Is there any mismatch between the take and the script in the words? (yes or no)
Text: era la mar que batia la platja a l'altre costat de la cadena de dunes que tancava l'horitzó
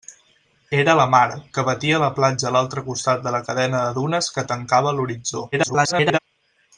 yes